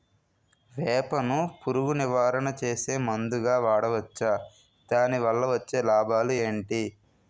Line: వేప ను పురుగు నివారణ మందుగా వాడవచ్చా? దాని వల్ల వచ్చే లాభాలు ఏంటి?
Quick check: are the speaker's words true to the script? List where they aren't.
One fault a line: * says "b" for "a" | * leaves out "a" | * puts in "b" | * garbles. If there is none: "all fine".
* puts in "చేసే"